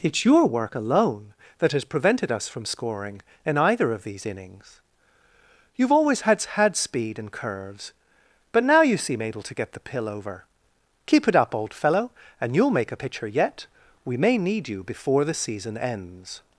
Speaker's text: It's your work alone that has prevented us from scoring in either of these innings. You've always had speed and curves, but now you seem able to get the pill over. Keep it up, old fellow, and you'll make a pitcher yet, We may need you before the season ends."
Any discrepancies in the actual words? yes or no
yes